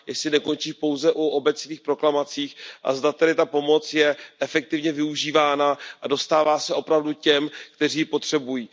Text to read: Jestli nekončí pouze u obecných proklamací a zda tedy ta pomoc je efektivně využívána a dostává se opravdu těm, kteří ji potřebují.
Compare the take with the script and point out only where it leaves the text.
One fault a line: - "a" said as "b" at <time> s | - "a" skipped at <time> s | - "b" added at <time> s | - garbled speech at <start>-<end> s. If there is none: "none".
none